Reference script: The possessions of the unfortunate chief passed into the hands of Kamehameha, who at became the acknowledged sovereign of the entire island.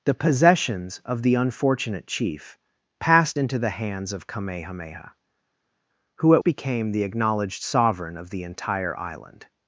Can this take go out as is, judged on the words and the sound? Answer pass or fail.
pass